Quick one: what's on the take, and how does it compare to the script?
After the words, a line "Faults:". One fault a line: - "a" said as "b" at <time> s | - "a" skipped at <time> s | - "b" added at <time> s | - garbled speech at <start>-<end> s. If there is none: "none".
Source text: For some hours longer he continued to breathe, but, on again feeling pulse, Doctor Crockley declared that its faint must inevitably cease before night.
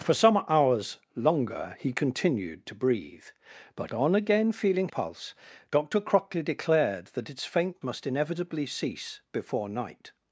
For some hours longer he continued to breathe, but, on again feeling pulse, Doctor Crockley declared that its faint must inevitably cease before night.
Faults:
none